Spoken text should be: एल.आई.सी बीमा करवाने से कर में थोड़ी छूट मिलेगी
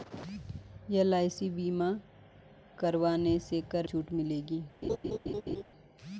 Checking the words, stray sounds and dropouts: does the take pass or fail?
fail